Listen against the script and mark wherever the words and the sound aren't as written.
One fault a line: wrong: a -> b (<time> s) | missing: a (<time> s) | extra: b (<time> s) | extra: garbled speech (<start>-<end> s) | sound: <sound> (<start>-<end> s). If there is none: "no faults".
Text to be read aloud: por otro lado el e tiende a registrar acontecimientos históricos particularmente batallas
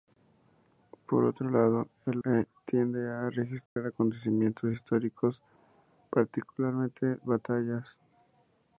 sound: dropout (3.7-3.8 s)